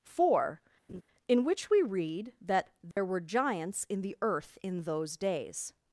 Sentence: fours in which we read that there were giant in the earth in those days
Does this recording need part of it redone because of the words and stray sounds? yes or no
yes